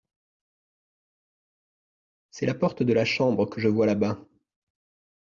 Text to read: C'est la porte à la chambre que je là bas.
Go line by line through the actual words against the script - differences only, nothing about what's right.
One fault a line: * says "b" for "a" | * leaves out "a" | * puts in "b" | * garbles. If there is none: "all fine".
* says "de" for "à"
* puts in "vois"